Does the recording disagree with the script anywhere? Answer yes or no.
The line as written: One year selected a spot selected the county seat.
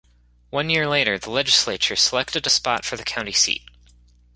yes